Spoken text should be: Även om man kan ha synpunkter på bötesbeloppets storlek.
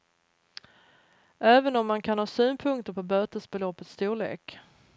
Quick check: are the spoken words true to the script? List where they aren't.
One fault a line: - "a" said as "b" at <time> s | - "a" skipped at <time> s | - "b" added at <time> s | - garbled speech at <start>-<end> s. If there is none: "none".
none